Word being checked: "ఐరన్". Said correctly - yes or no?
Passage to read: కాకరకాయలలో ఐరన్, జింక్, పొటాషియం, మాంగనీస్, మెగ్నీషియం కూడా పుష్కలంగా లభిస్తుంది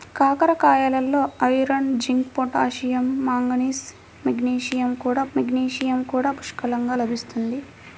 yes